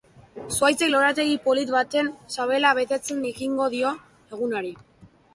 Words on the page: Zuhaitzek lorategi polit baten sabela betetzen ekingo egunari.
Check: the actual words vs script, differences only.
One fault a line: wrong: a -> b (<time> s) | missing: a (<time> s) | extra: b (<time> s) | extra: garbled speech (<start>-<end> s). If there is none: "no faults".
extra: dio (3.8 s)